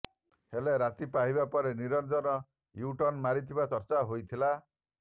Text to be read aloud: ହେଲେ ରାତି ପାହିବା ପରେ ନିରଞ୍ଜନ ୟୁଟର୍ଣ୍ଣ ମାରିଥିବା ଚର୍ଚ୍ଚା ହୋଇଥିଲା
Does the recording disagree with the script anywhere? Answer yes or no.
no